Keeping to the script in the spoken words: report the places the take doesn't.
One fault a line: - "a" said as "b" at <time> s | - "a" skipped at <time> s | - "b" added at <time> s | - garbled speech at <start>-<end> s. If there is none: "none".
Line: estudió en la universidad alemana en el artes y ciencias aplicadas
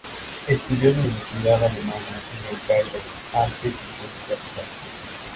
- "cairo" added at 2.7 s